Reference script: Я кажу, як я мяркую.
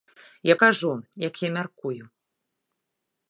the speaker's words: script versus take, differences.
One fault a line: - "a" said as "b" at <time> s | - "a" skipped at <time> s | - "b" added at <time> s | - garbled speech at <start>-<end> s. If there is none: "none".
none